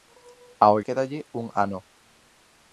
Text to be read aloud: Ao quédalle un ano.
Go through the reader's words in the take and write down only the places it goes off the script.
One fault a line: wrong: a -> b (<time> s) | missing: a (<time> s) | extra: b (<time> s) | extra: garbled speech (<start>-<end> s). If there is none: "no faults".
no faults